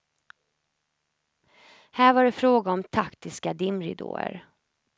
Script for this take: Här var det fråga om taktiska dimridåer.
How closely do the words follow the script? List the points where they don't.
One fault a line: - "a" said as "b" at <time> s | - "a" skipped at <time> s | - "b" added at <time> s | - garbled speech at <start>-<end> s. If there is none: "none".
none